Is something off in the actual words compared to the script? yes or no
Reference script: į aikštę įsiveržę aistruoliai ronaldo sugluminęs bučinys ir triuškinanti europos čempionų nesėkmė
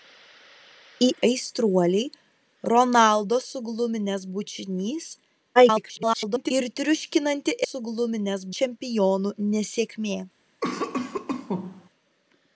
yes